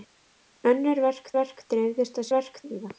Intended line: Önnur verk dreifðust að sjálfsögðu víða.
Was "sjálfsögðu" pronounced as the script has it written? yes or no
no